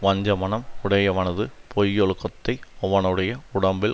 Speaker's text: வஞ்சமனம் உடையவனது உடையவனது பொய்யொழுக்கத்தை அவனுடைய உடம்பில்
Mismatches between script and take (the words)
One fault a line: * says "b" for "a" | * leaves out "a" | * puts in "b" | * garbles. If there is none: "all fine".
* leaves out "உடையவனது"